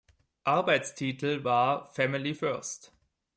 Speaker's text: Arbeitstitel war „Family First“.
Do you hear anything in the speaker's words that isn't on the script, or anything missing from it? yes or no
no